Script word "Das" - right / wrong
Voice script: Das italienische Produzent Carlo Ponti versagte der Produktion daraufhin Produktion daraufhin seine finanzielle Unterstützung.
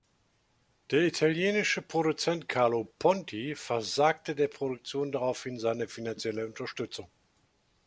wrong